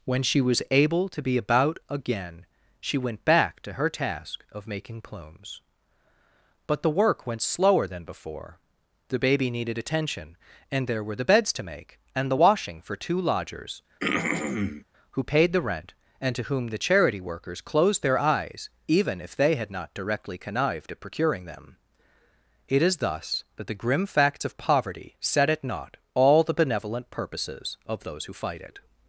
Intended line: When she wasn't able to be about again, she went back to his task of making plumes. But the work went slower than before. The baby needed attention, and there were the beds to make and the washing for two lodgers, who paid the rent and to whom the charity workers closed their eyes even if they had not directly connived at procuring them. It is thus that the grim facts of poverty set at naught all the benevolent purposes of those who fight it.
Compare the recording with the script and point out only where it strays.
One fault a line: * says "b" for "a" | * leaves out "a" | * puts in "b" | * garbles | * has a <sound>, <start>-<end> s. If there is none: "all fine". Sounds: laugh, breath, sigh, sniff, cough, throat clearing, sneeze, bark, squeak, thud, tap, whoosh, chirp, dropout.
* says "was" for "wasn't"
* says "her" for "his"
* has a throat clearing, 14.0-14.8 s